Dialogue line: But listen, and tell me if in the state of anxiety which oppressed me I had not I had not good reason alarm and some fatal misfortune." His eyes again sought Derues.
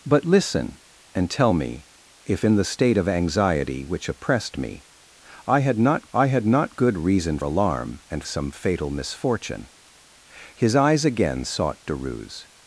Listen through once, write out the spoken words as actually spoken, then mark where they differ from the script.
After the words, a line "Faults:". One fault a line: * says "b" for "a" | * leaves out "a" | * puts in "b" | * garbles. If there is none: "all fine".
But listen, and tell me if in the state of anxiety which oppressed me I had not I had not good reason alarm and some fatal misfortune." His eyes again sought Derues.
Faults:
all fine